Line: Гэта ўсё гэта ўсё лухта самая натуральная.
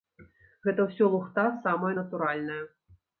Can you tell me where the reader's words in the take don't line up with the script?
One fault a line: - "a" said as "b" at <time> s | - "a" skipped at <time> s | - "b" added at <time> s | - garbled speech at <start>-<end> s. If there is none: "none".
- "гэта ўсё" skipped at 1.1 s